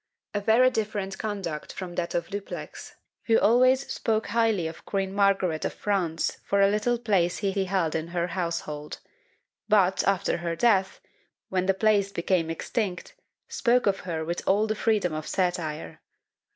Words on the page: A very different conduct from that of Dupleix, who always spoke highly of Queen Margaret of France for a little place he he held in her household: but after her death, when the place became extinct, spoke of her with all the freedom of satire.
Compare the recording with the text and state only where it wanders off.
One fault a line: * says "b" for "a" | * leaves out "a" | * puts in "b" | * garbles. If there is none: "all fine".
all fine